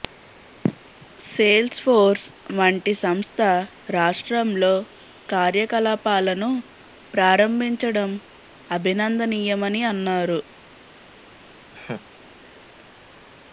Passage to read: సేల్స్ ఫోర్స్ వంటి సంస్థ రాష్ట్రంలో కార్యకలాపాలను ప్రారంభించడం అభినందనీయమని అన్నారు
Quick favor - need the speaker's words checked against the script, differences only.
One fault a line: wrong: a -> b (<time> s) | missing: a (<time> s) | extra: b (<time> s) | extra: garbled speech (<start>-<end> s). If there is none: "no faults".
no faults